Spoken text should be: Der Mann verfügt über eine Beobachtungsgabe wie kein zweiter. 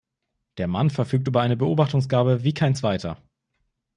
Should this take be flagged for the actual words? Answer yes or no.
no